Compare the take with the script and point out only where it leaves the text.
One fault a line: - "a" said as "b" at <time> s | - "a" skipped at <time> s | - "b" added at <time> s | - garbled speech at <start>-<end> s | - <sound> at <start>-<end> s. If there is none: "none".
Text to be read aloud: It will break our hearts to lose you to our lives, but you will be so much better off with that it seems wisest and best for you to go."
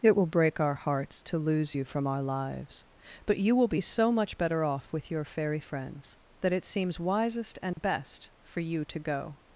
- "to" said as "from" at 1.8 s
- "your fairy friends" added at 5.1 s
- dropout at 7.7-7.8 s